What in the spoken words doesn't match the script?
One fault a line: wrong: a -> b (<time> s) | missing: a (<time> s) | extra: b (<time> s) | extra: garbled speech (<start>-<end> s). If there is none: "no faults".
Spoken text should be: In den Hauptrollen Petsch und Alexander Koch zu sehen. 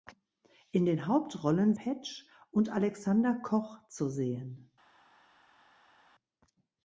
no faults